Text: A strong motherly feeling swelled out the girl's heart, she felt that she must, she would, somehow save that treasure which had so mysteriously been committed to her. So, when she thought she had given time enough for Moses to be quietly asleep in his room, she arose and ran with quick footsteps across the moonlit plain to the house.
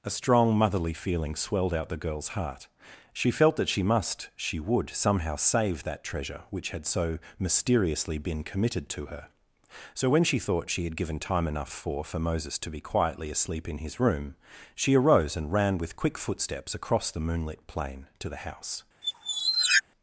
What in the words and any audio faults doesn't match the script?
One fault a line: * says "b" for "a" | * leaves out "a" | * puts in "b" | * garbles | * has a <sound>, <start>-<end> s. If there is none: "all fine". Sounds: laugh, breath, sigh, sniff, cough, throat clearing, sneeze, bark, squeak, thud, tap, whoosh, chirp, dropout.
* puts in "for"
* has a squeak, 19.0-19.8 s